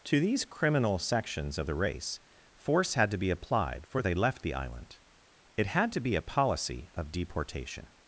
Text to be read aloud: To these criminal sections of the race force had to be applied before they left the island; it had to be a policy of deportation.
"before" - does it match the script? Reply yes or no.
no